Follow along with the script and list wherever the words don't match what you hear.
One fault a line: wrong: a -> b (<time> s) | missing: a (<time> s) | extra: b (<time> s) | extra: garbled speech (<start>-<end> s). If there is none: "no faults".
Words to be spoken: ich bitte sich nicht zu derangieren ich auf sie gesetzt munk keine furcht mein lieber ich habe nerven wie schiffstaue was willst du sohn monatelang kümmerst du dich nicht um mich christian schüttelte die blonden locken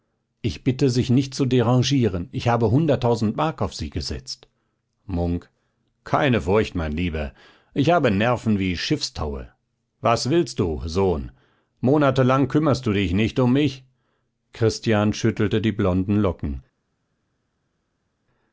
extra: habe hunderttausend mark (2.5 s)